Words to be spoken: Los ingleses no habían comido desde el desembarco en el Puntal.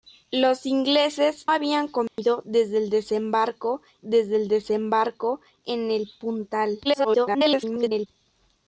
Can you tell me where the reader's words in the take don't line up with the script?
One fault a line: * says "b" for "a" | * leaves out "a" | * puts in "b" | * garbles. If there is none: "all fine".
* leaves out "no"
* puts in "desde el desembarco"
* garbles